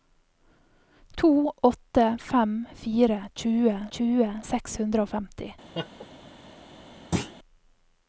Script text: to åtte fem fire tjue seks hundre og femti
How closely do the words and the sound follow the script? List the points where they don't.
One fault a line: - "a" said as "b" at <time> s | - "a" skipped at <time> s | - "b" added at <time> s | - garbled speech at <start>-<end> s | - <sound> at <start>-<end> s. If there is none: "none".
- "tjue" added at 4.0 s
- laugh at 5.7-6.1 s
- thud at 7.1-7.4 s